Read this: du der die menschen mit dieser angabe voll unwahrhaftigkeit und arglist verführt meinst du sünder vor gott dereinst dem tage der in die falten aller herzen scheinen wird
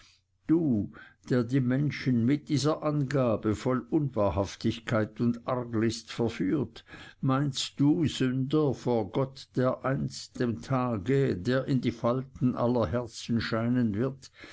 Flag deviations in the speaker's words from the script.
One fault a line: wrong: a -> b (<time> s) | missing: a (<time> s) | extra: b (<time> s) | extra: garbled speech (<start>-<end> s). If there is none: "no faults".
no faults